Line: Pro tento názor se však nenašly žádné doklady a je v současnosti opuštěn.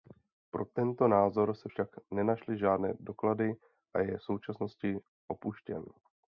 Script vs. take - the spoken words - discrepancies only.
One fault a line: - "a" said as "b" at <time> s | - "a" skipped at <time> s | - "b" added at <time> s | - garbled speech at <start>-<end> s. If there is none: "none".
none